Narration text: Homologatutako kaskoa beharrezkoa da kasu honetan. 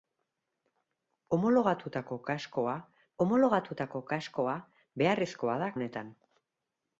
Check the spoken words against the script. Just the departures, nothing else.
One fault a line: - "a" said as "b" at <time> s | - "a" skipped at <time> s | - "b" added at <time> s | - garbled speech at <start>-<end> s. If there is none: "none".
- "homologatutako kaskoa" added at 3.2 s
- "kasu" skipped at 5.7 s